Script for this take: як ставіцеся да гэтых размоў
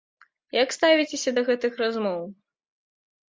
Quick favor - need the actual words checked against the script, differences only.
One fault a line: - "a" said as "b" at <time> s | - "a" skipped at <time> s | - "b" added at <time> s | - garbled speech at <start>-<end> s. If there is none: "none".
none